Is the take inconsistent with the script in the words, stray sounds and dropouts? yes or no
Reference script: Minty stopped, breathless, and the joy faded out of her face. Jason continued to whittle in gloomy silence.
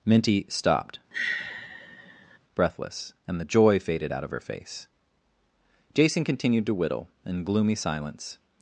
yes